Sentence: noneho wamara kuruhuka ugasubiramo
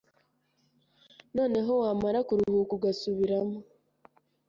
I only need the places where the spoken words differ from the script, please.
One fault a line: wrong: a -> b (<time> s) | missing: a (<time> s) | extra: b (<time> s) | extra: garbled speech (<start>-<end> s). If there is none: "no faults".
no faults